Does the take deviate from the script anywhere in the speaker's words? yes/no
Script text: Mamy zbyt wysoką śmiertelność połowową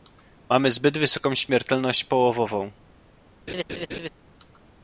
no